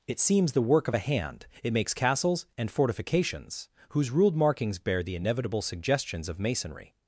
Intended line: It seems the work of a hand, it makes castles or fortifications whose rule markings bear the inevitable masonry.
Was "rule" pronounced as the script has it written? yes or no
no